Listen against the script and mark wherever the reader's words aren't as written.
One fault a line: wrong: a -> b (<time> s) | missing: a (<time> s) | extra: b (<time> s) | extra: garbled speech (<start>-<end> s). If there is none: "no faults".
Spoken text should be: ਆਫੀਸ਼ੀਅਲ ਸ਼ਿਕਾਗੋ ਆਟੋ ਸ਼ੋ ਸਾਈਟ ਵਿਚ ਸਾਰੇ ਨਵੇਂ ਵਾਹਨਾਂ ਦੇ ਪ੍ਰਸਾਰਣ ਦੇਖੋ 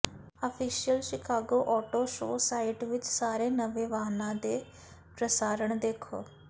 no faults